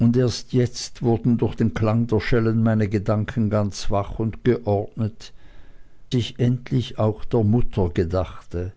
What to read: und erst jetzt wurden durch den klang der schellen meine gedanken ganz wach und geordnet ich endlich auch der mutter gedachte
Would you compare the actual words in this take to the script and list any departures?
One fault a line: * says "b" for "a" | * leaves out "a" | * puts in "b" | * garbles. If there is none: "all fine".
all fine